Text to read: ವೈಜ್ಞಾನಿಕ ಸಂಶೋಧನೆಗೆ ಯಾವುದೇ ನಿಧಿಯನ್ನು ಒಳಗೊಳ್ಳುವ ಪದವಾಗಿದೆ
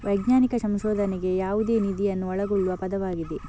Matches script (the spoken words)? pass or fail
pass